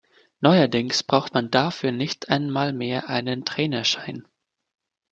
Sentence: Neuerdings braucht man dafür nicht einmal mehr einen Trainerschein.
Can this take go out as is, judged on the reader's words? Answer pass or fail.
pass